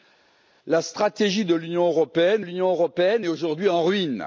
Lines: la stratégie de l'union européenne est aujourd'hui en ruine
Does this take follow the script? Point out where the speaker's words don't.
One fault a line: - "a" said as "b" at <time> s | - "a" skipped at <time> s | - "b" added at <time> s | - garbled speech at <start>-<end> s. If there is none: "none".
- "l'union européenne" added at 2.4 s